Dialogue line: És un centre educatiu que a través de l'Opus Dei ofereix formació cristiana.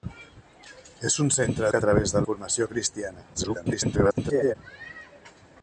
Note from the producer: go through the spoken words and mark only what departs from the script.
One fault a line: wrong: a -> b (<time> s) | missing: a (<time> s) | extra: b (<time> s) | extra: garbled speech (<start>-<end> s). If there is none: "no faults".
missing: educatiu (1.7 s)
missing: l'Opus Dei ofereix (2.2 s)
extra: garbled speech (3.3-4.6 s)